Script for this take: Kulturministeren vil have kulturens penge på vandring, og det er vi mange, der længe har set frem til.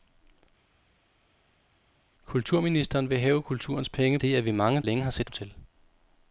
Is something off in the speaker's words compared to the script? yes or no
yes